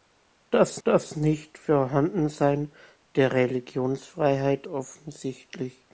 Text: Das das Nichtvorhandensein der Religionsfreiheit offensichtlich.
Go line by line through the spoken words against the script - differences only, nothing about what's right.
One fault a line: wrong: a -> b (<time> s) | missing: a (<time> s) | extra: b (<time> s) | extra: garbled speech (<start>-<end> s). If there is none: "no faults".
no faults